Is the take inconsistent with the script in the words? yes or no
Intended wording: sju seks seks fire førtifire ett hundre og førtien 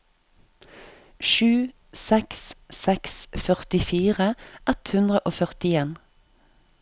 yes